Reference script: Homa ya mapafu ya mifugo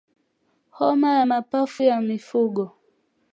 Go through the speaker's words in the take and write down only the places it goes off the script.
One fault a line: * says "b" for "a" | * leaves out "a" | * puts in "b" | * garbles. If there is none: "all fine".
all fine